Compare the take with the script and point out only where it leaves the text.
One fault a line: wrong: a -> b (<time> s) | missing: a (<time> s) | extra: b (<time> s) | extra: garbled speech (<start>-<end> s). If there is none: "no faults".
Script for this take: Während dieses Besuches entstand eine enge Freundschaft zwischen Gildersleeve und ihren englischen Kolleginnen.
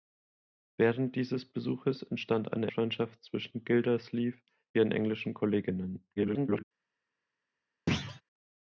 missing: enge (2.7 s)
missing: und (4.4 s)
extra: garbled speech (6.2-6.6 s)